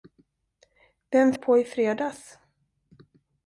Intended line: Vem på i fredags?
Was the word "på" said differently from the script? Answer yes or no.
no